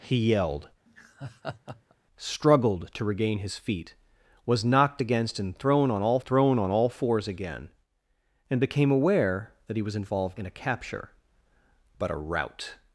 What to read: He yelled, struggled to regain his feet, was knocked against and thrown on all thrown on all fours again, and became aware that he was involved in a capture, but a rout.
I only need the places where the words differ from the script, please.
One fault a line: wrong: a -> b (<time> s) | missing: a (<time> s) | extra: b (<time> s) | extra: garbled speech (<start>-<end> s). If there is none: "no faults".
no faults